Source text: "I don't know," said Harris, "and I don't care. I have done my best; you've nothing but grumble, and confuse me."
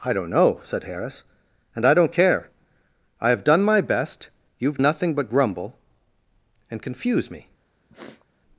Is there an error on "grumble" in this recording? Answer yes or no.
no